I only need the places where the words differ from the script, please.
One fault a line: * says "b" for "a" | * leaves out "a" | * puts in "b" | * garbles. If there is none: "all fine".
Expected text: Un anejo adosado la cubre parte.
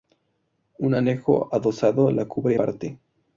all fine